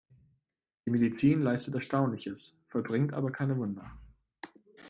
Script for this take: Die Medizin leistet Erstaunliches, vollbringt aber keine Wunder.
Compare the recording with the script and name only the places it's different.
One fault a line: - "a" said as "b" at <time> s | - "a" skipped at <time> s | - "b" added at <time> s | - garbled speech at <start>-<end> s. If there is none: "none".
none